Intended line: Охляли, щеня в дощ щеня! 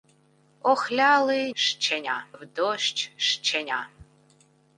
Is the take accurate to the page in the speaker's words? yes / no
yes